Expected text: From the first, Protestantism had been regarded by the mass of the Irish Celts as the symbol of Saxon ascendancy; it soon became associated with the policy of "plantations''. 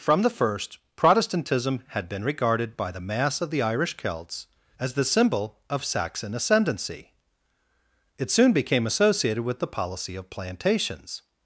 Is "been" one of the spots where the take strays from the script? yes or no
no